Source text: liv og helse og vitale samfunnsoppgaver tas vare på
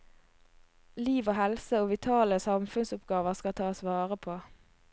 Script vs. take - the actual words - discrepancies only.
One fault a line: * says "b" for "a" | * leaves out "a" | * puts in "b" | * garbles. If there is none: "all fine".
* puts in "skal"